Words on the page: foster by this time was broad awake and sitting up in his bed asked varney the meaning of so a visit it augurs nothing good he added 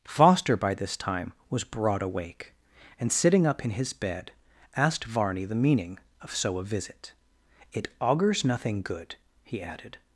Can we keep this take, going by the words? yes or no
yes